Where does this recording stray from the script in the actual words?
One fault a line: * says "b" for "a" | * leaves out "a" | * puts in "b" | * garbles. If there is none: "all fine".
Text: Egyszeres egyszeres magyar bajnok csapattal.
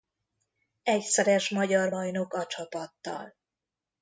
* leaves out "egyszeres"
* puts in "a"